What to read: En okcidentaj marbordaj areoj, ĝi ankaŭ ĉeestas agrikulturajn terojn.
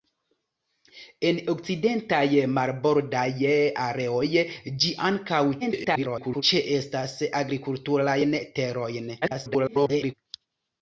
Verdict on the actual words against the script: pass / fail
fail